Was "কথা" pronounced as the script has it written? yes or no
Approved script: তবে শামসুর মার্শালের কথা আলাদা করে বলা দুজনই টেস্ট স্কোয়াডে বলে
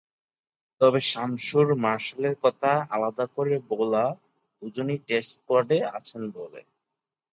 yes